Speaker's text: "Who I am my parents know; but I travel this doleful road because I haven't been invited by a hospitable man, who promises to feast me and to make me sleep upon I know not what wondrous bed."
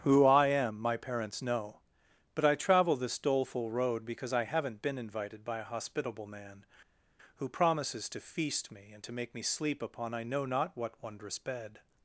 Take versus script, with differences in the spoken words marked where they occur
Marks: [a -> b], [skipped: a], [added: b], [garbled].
"Who I am my parents know; but I travel this doleful road because I haven't been invited by a hospitable man, who promises to feast me and to make me sleep upon I know not what wondrous bed."